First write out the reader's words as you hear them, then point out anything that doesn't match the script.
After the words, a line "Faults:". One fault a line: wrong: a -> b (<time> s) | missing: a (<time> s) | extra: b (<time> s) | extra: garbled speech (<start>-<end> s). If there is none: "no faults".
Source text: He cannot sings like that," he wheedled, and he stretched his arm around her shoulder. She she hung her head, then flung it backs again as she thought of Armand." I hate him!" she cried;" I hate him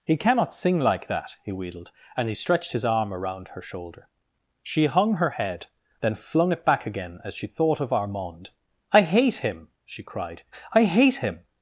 He cannot sing like that," he wheedled, and he stretched his arm around her shoulder. She hung her head, then flung it back again as she thought of Armand." I hate him!" she cried;" I hate him
Faults:
wrong: sings -> sing (0.5 s)
missing: she (4.9 s)
wrong: backs -> back (6.6 s)